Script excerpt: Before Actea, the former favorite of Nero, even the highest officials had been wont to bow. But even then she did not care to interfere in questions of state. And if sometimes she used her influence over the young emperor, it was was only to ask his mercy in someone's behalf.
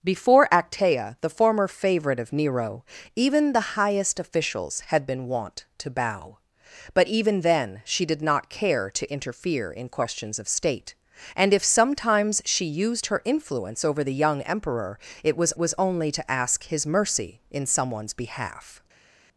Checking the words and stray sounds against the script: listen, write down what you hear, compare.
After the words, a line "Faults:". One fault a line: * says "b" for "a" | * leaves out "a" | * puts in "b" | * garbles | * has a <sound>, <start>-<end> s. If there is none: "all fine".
Before Actea, the former favorite of Nero, even the highest officials had been wont to bow. But even then she did not care to interfere in questions of state. And if sometimes she used her influence over the young emperor, it was was only to ask his mercy in someone's behalf.
Faults:
all fine